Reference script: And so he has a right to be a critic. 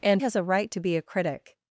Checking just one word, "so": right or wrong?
wrong